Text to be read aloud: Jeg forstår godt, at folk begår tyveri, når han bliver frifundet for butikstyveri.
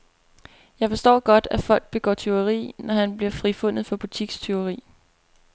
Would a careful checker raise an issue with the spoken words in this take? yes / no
no